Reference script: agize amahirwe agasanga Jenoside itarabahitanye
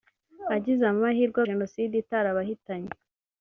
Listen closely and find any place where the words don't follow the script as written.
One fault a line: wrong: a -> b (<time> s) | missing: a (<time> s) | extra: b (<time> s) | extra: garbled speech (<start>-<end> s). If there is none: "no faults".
missing: agasanga (1.4 s)